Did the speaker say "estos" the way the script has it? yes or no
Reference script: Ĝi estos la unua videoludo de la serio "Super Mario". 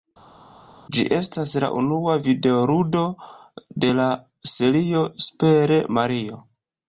no